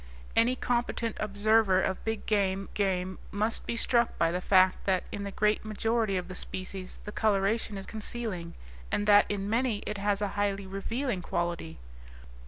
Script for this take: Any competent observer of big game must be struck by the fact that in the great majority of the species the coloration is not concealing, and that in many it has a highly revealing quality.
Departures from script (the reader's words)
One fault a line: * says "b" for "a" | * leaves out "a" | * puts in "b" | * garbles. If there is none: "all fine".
* puts in "game"
* leaves out "not"